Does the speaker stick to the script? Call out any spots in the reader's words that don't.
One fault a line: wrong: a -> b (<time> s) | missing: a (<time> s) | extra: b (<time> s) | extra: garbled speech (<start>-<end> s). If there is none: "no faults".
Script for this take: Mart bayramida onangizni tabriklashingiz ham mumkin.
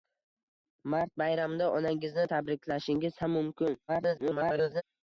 extra: garbled speech (3.9-4.8 s)